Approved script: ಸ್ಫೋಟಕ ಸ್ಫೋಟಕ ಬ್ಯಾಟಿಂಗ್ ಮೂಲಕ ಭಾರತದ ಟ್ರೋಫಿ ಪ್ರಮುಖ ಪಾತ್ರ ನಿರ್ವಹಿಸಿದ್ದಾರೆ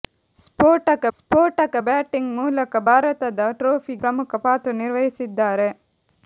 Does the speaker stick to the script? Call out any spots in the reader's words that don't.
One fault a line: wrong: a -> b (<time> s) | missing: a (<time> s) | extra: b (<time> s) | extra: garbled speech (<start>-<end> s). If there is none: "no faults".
no faults